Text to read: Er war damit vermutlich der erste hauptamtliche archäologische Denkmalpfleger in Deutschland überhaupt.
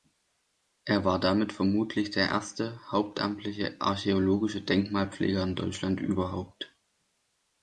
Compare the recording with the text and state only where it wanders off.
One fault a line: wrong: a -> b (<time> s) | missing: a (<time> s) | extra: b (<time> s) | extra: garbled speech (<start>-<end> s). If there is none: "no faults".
no faults